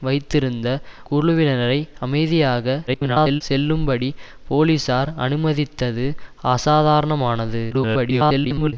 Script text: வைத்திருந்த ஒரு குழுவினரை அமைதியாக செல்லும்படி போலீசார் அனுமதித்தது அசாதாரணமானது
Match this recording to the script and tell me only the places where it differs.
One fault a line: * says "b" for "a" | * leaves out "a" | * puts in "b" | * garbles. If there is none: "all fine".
* leaves out "ஒரு"
* garbles
* garbles